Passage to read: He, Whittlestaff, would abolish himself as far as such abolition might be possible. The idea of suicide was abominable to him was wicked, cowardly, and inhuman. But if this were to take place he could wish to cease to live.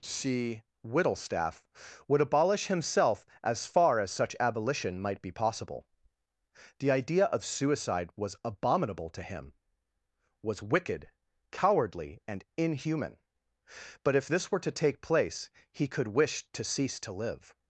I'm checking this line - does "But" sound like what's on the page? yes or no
yes